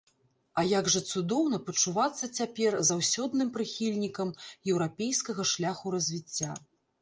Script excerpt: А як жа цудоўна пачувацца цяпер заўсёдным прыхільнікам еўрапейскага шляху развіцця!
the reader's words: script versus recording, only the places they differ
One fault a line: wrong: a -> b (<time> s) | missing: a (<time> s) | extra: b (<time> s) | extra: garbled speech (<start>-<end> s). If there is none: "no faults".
no faults